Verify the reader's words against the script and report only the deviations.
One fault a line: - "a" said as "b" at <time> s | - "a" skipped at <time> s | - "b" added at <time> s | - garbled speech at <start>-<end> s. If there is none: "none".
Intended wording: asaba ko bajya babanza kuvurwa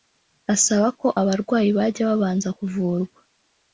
- "abarwayi" added at 1.2 s